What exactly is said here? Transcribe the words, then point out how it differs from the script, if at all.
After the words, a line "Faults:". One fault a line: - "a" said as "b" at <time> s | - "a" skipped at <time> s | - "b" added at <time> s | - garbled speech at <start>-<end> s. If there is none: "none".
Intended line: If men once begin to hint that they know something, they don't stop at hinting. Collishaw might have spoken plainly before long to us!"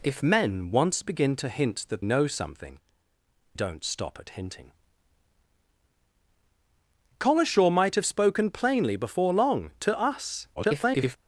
If men once begin to hint that know something, don't stop at hinting. Collishaw might have spoken plainly before long to us!" [garbled]
Faults:
- "they" skipped at 2.0 s
- "they" skipped at 2.8 s
- garbled speech at 10.6-11.2 s